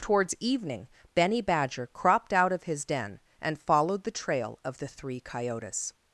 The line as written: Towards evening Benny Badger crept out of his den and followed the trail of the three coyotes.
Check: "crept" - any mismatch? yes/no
yes